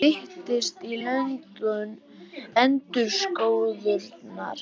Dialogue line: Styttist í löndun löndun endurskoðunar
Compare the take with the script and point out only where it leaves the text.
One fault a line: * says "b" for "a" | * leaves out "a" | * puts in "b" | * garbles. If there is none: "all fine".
* leaves out "löndun"